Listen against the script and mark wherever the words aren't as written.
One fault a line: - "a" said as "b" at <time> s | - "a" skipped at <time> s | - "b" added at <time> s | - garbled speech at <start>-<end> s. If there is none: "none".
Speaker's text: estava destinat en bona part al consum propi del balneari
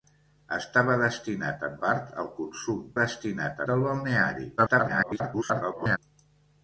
- "bona" skipped at 1.8 s
- "propi" said as "destinat" at 3.0 s
- garbled speech at 4.6-6.0 s